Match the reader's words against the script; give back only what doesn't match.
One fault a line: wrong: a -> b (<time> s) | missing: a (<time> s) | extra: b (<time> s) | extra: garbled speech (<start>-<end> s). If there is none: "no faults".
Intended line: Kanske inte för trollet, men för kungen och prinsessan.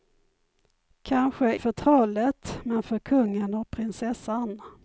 missing: inte (1.6 s)